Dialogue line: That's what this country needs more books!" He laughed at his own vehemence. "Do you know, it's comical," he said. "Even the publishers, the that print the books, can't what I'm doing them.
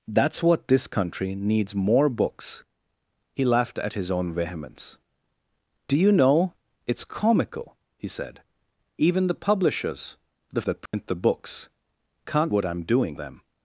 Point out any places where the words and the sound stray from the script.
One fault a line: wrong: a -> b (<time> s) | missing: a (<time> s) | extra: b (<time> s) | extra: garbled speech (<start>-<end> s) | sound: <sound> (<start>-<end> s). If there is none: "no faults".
sound: dropout (10.9-10.9 s)